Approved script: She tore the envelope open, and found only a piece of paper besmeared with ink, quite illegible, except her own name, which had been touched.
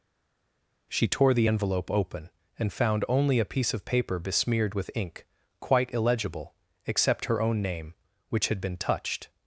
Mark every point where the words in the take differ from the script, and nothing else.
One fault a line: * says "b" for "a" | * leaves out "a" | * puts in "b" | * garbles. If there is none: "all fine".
all fine